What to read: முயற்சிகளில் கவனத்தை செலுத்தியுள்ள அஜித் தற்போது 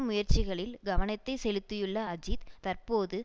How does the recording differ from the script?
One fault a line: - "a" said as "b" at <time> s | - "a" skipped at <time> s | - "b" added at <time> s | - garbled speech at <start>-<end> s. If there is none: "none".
none